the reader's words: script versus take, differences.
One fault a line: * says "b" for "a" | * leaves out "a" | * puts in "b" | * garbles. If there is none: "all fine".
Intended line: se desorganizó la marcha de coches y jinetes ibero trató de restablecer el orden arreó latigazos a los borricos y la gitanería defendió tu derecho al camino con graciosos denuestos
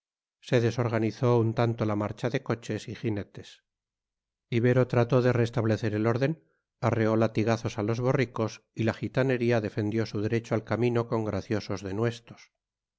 * puts in "un tanto"
* says "su" for "tu"